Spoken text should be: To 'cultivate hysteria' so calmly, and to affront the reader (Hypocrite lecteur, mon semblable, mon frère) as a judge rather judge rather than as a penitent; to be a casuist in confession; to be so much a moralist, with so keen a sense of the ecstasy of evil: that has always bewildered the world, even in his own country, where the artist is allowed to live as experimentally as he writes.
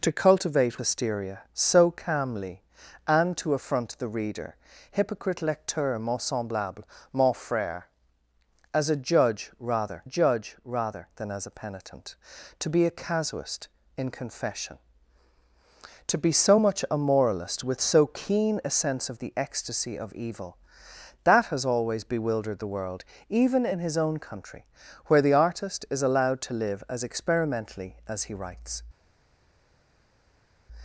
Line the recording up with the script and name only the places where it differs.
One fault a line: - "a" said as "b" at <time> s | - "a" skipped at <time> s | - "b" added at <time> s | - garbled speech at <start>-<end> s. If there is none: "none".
none